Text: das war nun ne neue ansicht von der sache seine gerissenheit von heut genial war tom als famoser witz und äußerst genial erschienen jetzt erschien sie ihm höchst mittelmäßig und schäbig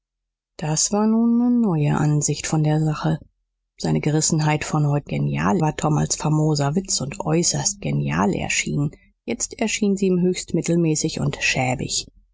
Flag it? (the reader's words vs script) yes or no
no